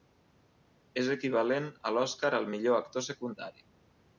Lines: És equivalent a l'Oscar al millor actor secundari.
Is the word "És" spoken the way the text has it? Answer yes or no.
yes